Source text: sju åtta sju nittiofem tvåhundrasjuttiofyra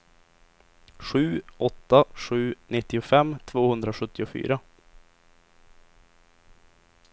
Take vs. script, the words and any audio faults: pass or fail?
pass